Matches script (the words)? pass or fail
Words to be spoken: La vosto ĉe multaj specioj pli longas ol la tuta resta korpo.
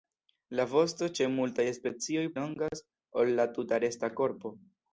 fail